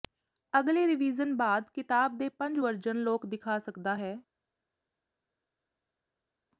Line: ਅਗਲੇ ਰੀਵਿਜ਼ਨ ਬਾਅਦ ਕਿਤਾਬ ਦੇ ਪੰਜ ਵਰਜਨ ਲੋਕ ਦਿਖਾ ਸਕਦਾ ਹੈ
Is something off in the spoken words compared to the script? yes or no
no